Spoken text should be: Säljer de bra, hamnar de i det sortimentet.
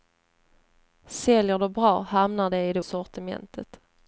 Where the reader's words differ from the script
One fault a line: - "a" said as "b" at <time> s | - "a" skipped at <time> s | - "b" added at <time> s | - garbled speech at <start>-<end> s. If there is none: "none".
none